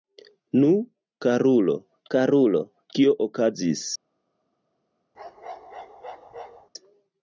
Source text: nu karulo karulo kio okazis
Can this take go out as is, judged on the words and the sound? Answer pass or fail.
fail